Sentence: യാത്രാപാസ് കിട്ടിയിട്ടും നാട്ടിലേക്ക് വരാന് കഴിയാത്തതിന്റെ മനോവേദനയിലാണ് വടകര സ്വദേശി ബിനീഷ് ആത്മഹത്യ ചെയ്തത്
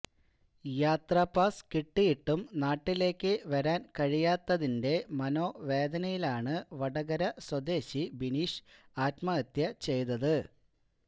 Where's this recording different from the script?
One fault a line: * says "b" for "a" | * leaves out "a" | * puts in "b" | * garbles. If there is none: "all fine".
all fine